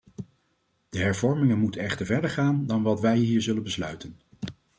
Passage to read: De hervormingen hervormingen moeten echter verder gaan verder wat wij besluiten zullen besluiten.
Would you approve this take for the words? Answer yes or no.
no